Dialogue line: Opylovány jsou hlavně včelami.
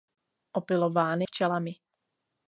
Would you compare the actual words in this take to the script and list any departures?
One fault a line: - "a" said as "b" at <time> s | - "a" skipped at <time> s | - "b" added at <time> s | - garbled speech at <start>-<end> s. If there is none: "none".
- "jsou hlavně" skipped at 1.2 s